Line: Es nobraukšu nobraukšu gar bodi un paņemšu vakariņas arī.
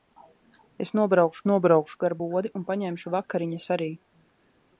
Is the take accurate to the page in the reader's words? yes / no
yes